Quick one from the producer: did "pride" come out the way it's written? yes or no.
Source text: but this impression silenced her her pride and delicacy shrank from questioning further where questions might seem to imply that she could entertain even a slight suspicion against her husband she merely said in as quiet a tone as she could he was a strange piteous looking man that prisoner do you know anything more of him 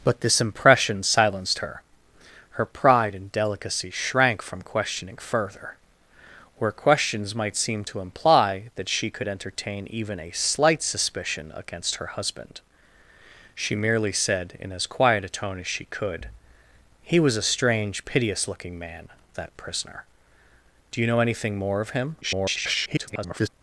yes